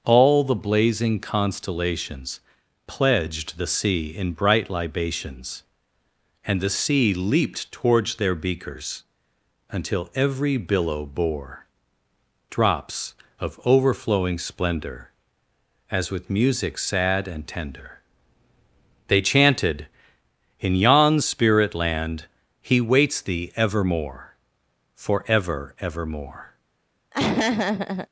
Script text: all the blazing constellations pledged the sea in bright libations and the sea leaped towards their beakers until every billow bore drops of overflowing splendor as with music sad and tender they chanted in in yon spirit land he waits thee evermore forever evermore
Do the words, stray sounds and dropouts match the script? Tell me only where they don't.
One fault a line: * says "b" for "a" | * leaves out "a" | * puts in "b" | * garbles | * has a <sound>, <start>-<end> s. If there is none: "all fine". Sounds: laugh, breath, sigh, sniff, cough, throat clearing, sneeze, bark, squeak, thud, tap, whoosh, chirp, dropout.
* leaves out "in"
* has a laugh, 27.1-28.1 s